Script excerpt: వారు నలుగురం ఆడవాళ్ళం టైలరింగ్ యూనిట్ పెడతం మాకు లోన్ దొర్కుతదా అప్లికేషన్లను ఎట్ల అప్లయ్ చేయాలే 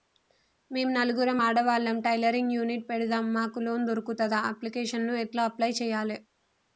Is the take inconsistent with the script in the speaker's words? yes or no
yes